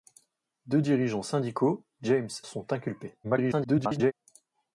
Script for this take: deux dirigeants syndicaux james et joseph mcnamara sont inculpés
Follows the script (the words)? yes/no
no